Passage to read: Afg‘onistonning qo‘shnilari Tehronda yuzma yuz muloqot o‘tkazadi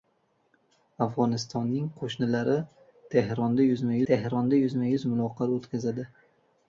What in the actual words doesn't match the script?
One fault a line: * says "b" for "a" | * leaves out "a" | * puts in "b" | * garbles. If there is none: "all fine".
* puts in "Tehronda yuzma"